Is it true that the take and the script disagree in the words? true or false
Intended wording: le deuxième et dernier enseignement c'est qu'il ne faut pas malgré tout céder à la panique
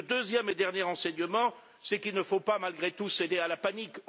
false